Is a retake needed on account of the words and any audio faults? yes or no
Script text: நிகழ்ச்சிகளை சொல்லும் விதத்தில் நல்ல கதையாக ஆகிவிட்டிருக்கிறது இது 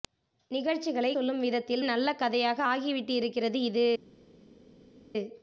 no